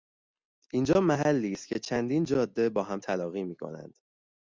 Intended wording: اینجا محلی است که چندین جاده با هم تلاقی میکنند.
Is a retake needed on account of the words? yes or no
no